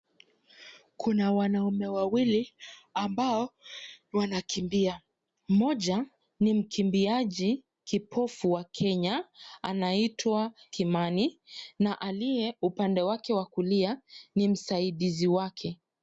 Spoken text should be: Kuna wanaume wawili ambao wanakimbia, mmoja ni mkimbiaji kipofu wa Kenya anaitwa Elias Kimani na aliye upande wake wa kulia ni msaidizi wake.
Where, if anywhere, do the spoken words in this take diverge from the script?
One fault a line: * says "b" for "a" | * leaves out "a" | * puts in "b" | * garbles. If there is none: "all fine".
* leaves out "Elias"